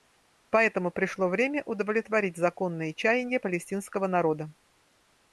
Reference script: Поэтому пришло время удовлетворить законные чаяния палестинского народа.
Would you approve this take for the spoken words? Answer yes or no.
yes